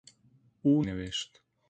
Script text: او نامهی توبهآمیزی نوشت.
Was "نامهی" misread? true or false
true